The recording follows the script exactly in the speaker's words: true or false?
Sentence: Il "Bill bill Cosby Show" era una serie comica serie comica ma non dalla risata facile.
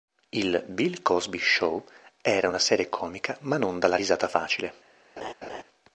false